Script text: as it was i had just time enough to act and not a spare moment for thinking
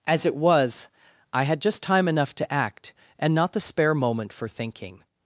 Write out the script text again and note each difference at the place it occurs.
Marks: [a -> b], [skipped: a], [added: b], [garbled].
as it was i had just time enough to act and not [a -> the] spare moment for thinking